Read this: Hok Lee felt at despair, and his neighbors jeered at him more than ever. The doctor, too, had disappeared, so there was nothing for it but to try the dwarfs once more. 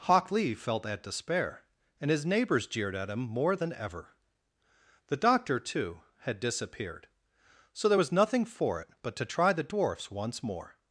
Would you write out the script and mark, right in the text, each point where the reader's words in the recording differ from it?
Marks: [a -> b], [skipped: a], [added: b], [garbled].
Hok Lee felt at despair, and his neighbors jeered at him more than ever. The doctor, too, had disappeared, so there was nothing for it but to try the dwarfs once more.